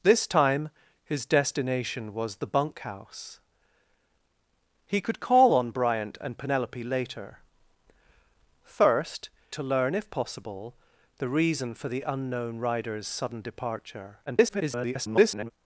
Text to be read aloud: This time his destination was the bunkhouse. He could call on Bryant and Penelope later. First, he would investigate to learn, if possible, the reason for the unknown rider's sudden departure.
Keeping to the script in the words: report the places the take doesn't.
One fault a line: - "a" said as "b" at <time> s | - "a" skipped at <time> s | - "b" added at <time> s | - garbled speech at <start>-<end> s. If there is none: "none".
- "he would investigate" skipped at 9.3 s
- garbled speech at 14.3-15.5 s